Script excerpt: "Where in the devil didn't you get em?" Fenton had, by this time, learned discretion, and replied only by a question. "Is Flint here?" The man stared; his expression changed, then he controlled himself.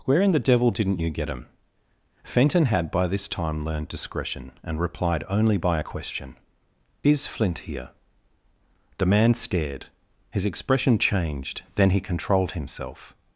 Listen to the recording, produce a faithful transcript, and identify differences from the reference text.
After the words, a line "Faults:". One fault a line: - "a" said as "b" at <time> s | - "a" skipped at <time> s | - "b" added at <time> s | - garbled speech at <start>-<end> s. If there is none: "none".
"Where in the devil didn't you get em?" Fenton had, by this time, learned discretion, and replied only by a question. "Is Flint here?" The man stared; his expression changed, then he controlled himself.
Faults:
none